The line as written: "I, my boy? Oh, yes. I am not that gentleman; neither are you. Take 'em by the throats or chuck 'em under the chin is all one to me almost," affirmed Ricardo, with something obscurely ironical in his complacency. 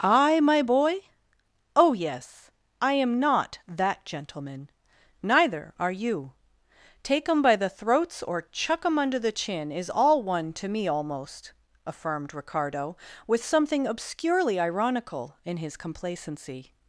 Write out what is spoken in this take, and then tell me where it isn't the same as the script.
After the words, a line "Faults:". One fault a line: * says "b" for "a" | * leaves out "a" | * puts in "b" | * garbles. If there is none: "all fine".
"I, my boy? Oh, yes. I am not that gentleman; neither are you. Take 'em by the throats or chuck 'em under the chin is all one to me almost," affirmed Ricardo, with something obscurely ironical in his complacency.
Faults:
all fine